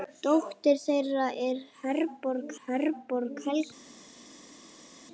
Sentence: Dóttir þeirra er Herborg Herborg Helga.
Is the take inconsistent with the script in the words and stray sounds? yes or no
no